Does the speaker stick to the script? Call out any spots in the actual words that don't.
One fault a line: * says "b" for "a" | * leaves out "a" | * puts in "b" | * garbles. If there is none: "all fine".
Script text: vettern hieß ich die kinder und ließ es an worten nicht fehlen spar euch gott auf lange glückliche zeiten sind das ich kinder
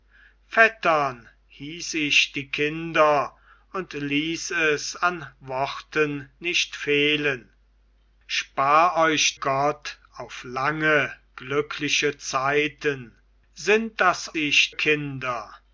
all fine